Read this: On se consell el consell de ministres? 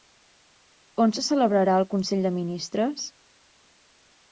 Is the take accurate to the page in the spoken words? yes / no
no